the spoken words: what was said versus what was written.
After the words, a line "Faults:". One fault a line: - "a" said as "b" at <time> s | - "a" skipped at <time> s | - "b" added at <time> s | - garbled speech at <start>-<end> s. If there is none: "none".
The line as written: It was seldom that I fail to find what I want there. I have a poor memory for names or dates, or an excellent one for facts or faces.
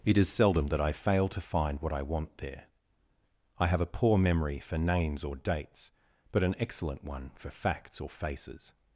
It is seldom that I fail to find what I want there. I have a poor memory for names or dates, but an excellent one for facts or faces.
Faults:
- "was" said as "is" at 0.2 s
- "or" said as "but" at 6.3 s